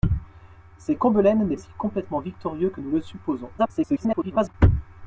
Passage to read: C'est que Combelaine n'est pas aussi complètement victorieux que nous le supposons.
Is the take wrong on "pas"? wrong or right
wrong